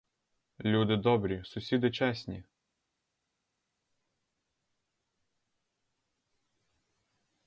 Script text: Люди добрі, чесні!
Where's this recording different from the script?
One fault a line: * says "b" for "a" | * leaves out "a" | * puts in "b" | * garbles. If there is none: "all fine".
* puts in "сусіди"